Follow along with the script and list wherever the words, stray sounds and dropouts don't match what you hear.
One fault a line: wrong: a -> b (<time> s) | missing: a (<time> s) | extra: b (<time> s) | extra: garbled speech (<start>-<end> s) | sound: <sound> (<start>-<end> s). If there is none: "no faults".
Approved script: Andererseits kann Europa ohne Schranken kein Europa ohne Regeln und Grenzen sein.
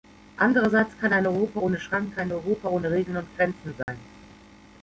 extra: ein (1.1 s)
sound: dropout (3.8-3.9 s)